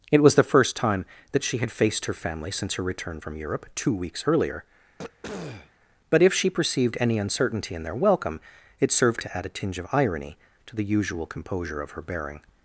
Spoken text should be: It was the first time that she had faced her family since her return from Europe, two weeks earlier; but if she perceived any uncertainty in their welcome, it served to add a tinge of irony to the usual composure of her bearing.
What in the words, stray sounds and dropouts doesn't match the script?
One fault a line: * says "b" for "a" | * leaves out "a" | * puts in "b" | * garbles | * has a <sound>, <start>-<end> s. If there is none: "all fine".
* has a throat clearing, 5.0-5.7 s